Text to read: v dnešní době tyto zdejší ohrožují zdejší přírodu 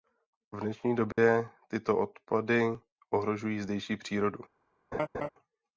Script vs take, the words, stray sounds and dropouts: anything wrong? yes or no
yes